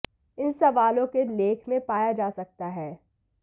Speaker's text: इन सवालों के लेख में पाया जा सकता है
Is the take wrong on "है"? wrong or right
right